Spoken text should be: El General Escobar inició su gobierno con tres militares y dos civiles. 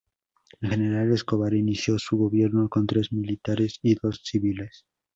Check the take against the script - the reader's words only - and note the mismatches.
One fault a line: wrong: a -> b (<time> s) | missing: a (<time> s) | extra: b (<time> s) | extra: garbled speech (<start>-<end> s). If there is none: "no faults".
no faults